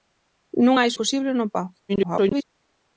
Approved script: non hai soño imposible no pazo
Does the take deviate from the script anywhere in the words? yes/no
yes